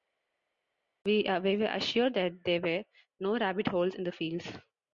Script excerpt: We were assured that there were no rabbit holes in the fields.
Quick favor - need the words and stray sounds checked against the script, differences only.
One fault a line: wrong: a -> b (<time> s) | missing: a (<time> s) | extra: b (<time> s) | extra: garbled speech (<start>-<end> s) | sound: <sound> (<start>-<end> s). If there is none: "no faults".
no faults